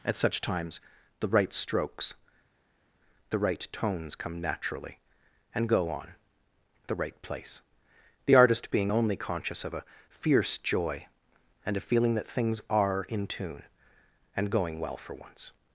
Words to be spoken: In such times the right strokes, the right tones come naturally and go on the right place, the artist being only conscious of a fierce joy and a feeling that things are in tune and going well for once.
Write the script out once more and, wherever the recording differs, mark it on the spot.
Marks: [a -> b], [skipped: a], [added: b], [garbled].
[In -> At] such times the right strokes, the right tones come naturally and go on the right place, the artist being only conscious of a fierce joy and a feeling that things are in tune and going well for once.